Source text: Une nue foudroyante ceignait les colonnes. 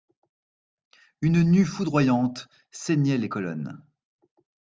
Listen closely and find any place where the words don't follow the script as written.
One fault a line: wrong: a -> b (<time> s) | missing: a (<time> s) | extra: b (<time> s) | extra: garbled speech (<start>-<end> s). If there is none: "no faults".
no faults